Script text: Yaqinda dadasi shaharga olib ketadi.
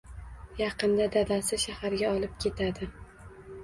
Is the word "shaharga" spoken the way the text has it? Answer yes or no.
yes